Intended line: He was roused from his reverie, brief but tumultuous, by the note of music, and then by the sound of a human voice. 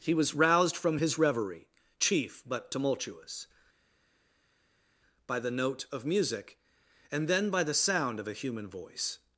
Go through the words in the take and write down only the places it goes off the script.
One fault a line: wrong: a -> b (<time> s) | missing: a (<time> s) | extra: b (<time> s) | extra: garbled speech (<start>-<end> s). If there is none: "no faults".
wrong: brief -> chief (2.0 s)